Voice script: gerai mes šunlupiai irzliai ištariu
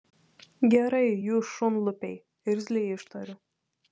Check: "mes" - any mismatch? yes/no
yes